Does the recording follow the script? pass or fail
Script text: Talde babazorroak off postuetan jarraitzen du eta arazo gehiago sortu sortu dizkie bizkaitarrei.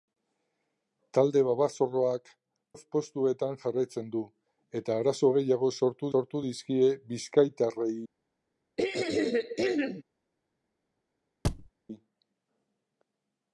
pass